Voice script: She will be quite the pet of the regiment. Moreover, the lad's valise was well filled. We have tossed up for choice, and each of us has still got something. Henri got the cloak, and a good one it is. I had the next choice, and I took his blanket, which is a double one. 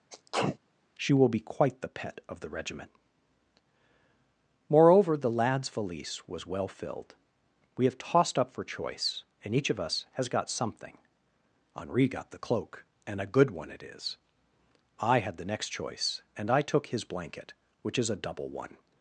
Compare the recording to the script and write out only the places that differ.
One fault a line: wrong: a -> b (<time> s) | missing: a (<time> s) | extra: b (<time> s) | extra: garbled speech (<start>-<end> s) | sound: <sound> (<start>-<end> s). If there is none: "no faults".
sound: sneeze (0.1-0.6 s)
missing: still (10.3 s)